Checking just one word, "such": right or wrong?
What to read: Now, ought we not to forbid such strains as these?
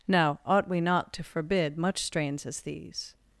wrong